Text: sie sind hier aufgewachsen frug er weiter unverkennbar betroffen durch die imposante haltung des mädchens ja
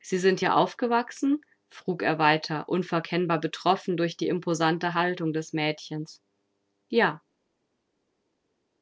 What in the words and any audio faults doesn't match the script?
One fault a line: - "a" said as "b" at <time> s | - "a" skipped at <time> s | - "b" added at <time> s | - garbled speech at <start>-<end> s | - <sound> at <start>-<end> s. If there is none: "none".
none